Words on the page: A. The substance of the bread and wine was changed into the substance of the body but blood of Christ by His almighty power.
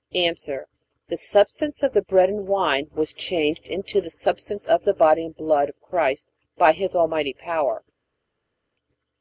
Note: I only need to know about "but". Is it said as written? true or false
false